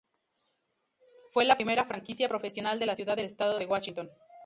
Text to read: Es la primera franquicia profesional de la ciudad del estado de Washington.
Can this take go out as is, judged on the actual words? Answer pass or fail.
fail